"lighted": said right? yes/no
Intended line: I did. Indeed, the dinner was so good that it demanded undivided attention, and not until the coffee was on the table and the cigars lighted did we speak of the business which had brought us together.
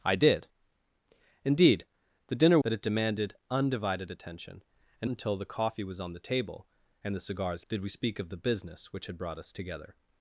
no